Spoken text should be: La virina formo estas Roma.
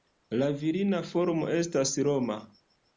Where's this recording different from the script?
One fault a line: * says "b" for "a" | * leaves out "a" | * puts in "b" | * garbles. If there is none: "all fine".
all fine